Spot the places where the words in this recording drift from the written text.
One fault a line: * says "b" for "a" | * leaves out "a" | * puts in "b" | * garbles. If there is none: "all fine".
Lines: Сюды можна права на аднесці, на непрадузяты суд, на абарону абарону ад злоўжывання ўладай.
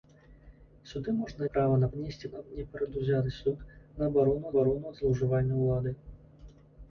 all fine